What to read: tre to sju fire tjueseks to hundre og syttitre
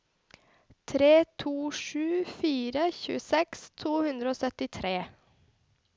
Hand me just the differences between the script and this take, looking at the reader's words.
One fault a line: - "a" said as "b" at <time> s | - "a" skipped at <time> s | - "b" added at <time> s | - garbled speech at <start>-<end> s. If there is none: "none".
none